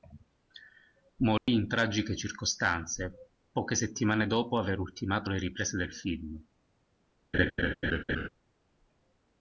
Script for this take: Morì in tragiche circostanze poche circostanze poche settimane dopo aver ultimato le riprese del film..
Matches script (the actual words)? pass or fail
fail